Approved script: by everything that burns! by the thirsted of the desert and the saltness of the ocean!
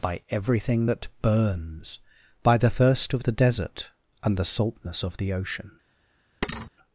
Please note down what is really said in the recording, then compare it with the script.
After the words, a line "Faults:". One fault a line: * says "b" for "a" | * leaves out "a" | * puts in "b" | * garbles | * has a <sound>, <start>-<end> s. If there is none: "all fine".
by everything that burns! by the thirst of the desert and the saltness of the ocean!
Faults:
* says "thirst" for "thirsted"
* has a thud, 6.4-6.7 s